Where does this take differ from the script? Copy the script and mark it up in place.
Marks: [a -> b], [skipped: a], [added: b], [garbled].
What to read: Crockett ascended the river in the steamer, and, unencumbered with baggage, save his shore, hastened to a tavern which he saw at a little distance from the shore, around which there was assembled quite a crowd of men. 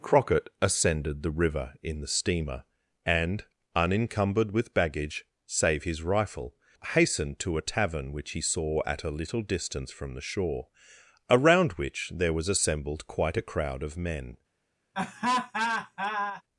Crockett ascended the river in the steamer, and, unencumbered with baggage, save his [shore, -> rifle] hastened to a tavern which he saw at a little distance from the shore, around which there was assembled quite a crowd of men.